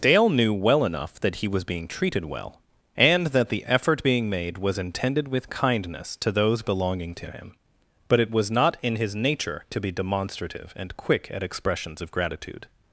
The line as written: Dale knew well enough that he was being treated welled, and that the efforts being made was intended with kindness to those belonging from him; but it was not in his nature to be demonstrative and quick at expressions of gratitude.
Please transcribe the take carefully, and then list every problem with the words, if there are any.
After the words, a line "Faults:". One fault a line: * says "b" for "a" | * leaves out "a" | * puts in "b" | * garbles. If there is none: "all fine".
Dale knew well enough that he was being treated well, and that the effort being made was intended with kindness to those belonging to him; but it was not in his nature to be demonstrative and quick at expressions of gratitude.
Faults:
* says "well" for "welled"
* says "effort" for "efforts"
* says "to" for "from"